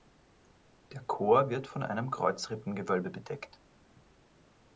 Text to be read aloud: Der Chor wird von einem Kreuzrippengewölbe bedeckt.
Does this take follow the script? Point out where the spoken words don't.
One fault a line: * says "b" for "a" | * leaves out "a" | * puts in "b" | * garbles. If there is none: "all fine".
all fine